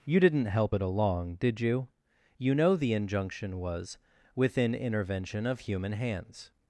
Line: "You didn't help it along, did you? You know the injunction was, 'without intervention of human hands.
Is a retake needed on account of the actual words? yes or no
yes